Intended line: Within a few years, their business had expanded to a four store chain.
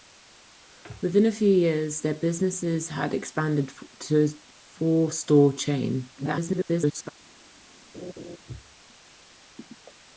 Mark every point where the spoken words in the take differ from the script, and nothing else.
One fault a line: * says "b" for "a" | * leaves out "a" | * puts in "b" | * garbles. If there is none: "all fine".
* garbles